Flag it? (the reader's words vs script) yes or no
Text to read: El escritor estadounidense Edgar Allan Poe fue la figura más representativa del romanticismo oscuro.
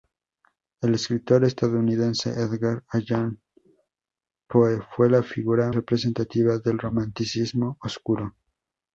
yes